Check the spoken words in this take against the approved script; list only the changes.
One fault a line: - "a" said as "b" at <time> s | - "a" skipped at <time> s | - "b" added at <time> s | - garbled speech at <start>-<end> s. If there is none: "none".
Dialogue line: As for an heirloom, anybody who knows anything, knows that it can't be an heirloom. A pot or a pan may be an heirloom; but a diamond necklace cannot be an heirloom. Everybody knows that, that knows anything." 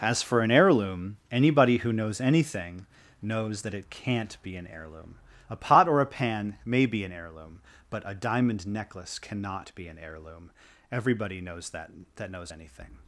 none